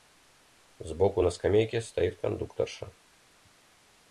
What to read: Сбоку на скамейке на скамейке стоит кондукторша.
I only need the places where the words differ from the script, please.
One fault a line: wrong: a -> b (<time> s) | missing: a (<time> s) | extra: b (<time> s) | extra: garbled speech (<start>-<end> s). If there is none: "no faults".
missing: на скамейке (1.8 s)